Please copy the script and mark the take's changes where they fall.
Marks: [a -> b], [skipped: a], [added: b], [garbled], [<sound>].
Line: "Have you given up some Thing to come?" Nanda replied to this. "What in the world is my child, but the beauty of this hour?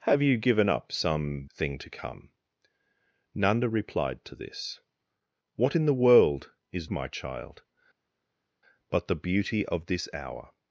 "Have you given up some Thing to come?" Nanda replied to this. "What in the world is my child, but the beauty of this hour?